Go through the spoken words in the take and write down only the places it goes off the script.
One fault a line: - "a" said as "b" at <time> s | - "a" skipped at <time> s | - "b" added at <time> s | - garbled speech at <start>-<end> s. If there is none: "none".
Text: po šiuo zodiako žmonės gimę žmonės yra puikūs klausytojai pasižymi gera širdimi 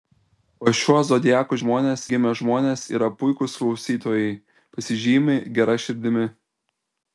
none